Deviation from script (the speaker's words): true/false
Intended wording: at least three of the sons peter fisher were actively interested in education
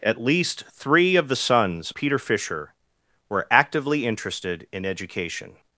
false